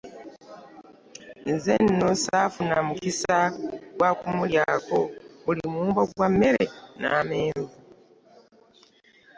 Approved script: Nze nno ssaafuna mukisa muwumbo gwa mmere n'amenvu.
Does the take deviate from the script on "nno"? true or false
false